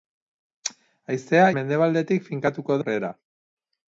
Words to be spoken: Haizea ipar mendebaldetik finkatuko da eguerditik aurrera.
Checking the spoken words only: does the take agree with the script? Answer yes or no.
no